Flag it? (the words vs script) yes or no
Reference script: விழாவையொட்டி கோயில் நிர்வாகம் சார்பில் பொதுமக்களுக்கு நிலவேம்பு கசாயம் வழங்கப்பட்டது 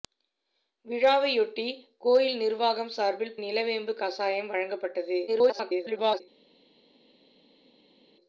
yes